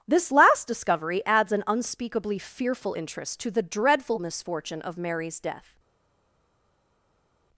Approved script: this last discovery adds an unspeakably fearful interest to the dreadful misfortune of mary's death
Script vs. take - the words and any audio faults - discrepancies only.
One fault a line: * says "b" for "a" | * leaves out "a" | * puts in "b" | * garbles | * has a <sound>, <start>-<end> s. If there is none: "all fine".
all fine